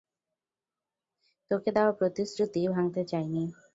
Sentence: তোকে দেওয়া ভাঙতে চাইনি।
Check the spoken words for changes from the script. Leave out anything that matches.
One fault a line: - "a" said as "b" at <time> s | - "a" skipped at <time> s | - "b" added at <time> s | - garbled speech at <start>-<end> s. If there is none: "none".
- "প্রতিশ্রুতি" added at 1.9 s